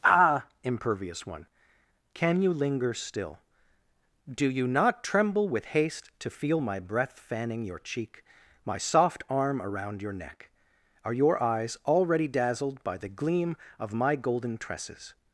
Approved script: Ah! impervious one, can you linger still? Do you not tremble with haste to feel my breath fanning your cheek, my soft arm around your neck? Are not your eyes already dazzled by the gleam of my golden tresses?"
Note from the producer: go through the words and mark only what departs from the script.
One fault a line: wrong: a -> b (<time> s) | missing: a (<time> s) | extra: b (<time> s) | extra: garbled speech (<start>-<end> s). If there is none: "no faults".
missing: not (11.1 s)